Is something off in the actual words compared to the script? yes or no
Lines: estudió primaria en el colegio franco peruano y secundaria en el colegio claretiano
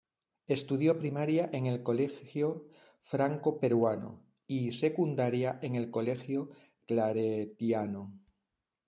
no